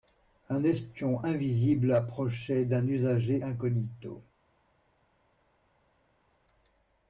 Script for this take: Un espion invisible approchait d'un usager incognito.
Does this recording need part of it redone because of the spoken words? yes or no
no